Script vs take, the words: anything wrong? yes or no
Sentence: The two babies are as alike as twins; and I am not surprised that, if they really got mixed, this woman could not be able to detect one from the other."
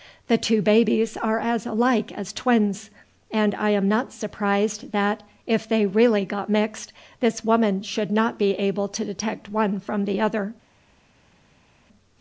yes